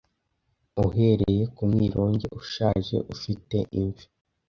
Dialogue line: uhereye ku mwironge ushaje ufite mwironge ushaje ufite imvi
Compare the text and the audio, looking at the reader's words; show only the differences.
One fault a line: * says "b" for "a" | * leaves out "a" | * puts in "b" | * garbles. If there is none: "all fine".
* leaves out "mwironge ushaje ufite"